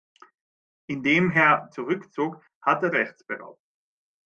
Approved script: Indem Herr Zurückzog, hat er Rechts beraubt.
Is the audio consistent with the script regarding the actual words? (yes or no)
yes